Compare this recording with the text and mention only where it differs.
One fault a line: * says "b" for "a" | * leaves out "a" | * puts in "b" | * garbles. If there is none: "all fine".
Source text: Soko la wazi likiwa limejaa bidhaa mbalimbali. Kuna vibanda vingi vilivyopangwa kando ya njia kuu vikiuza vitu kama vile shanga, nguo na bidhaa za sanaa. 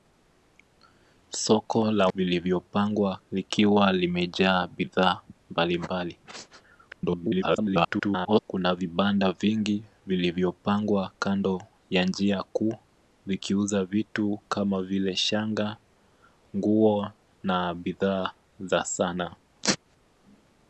* says "vilivyopangwa" for "wazi"
* garbles